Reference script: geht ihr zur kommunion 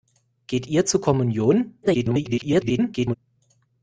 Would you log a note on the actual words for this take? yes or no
yes